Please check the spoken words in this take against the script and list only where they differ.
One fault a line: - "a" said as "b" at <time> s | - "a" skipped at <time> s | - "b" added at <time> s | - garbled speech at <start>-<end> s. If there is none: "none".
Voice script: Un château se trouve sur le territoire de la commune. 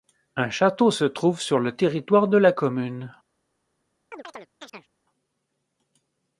none